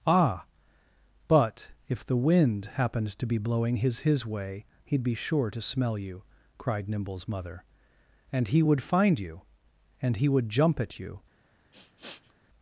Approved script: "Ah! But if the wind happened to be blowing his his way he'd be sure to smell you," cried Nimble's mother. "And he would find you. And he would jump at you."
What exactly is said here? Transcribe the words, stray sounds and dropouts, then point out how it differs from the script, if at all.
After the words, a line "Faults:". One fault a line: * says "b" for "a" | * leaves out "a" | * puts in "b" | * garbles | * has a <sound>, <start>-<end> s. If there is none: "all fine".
"Ah! But if the wind happened to be blowing his his way he'd be sure to smell you," cried Nimble's mother. "And he would find you. And he would jump at you."
Faults:
* has a sniff, 11.7-12.3 s